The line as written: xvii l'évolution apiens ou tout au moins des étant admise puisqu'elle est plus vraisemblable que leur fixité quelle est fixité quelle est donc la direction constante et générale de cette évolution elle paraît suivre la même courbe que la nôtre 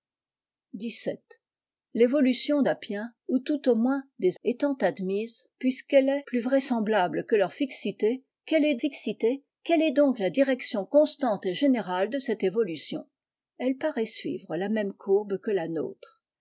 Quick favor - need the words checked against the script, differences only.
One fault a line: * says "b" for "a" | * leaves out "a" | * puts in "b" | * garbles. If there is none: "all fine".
all fine